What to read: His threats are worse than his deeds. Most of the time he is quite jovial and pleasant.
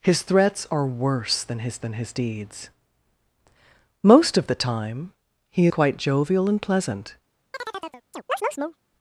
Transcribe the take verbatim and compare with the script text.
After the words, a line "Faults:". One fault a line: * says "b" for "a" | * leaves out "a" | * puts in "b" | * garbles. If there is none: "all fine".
His threats are worse than his than his deeds. Most of the time he quite jovial and pleasant.
Faults:
* puts in "than his"
* leaves out "is"